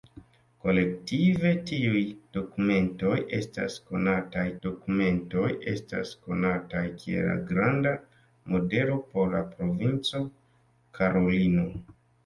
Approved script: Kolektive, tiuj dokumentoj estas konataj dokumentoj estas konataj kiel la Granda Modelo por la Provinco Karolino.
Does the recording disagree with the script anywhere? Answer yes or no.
no